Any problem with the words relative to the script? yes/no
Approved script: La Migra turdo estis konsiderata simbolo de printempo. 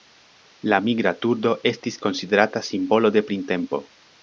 no